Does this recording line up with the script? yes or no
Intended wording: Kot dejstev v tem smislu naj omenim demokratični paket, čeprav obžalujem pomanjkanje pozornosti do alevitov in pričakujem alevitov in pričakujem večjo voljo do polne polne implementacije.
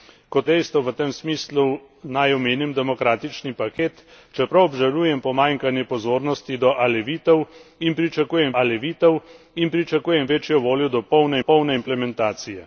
yes